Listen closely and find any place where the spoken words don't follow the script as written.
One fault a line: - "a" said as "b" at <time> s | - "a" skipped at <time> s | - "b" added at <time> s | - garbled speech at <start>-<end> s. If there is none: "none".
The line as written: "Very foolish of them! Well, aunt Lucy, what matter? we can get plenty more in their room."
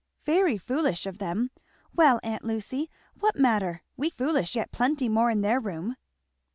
- "can" said as "foolish" at 4.1 s